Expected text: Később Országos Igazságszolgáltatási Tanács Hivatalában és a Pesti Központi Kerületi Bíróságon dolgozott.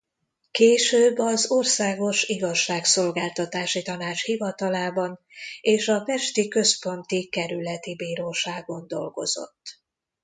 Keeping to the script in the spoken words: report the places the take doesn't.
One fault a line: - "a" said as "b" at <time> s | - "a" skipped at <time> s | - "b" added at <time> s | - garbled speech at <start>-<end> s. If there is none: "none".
- "az" added at 1.2 s